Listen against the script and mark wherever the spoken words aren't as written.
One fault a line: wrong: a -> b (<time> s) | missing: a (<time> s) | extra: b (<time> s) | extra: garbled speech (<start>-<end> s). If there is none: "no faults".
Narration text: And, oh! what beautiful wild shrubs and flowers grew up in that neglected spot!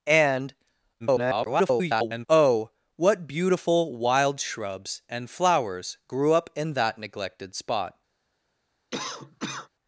extra: garbled speech (1.0-2.3 s)